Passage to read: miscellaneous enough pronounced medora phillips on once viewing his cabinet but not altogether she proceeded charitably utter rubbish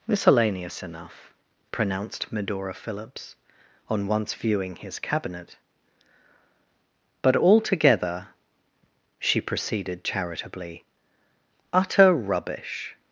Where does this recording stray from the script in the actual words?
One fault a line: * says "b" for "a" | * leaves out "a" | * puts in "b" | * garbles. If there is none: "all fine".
* leaves out "not"